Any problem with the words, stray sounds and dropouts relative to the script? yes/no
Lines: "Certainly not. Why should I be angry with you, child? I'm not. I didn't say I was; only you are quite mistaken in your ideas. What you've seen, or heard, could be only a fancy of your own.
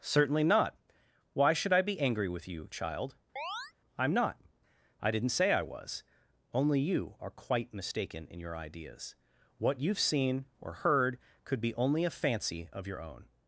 yes